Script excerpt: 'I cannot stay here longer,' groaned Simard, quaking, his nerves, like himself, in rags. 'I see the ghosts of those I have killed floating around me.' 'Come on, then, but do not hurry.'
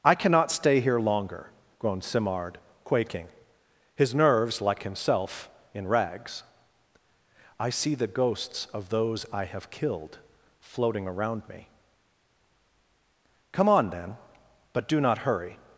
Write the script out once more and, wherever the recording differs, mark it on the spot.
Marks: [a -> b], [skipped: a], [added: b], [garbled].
'I cannot stay here longer,' groaned Simard, quaking, his nerves, like himself, in rags. 'I see the ghosts of those I have killed floating around me.' 'Come on, then, but do not hurry.'